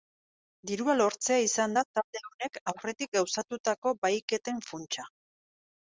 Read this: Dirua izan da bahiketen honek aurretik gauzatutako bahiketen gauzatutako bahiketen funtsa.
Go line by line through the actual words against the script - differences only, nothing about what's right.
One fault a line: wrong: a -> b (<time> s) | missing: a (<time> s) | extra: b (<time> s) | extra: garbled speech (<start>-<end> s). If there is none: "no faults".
extra: lortzea (1.0 s)
wrong: bahiketen -> talde (2.0 s)
missing: gauzatutako bahiketen (4.6 s)